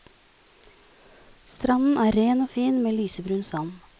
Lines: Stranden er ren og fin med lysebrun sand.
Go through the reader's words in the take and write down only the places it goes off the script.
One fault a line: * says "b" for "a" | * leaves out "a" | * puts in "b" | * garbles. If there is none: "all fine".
all fine